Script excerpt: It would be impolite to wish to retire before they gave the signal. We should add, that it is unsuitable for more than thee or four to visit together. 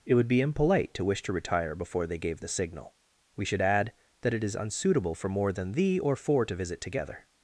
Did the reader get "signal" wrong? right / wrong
right